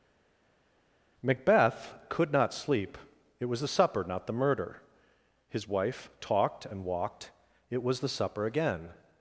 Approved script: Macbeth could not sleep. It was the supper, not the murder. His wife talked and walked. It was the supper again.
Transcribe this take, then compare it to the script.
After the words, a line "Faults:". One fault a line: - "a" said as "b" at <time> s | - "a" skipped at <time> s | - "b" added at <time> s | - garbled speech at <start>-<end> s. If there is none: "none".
Macbeth could not sleep. It was the supper, not the murder. His wife talked and walked. It was the supper again.
Faults:
none